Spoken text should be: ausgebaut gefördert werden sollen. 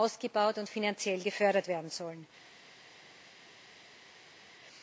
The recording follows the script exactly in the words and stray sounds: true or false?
false